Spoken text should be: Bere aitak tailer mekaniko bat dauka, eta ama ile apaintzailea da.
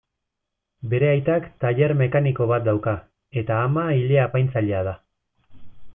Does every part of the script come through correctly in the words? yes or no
yes